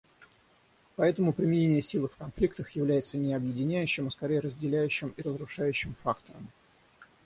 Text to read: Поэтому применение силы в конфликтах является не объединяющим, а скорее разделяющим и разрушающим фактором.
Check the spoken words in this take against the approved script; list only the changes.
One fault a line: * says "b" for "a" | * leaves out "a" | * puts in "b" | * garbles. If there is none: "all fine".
all fine